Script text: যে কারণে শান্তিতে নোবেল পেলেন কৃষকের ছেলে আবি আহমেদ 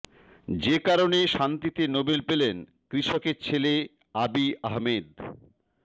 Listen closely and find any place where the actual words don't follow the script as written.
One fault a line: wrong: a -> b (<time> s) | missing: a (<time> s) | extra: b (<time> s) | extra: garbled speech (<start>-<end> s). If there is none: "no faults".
no faults